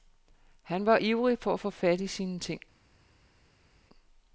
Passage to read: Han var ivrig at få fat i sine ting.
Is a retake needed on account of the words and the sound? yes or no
yes